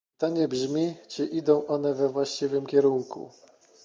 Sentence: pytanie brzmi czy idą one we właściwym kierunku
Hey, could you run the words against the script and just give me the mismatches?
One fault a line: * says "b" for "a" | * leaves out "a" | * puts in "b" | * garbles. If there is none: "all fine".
all fine